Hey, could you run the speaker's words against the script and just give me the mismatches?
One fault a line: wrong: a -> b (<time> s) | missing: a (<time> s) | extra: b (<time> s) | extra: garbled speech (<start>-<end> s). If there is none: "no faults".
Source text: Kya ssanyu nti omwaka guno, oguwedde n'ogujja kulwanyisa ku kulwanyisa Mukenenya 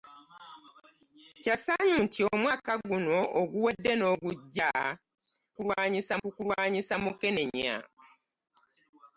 no faults